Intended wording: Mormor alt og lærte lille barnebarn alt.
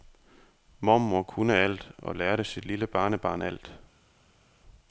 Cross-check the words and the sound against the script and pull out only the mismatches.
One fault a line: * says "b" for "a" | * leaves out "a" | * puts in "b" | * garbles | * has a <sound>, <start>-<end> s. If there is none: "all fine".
* puts in "kunne"
* puts in "sit"